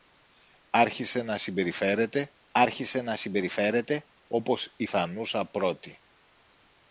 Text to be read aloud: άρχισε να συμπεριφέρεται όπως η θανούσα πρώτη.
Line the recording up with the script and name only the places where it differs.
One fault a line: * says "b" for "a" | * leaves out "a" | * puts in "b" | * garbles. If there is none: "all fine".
* puts in "άρχισε να συμπεριφέρεται"